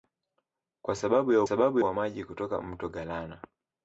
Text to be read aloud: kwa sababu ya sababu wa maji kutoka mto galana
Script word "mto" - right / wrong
right